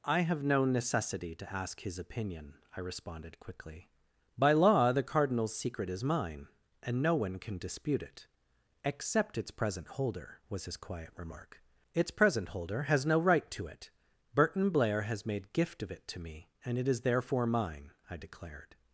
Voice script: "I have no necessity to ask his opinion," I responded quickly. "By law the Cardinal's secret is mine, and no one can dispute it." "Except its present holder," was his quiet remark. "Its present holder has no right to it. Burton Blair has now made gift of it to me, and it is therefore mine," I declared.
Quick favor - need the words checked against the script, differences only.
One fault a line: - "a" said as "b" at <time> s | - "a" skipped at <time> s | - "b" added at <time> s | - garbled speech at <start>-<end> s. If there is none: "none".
- "now" skipped at 15.3 s